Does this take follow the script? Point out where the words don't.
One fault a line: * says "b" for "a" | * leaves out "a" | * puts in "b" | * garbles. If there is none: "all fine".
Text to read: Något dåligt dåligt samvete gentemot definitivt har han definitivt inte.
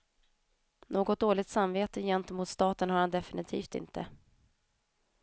* leaves out "dåligt"
* says "staten" for "definitivt"